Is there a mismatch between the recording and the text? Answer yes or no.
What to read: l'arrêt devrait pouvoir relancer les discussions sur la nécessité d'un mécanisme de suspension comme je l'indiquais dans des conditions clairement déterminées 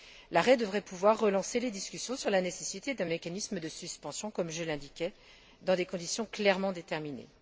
no